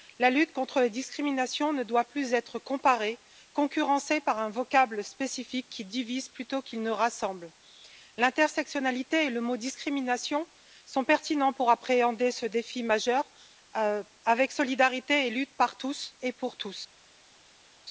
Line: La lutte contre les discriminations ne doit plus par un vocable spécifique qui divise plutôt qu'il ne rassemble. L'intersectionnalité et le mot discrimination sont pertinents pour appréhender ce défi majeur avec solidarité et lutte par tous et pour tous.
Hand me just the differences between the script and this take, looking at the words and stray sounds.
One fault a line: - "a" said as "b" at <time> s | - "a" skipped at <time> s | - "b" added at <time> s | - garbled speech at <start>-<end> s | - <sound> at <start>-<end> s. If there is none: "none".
- "être comparée concurrencée" added at 2.3 s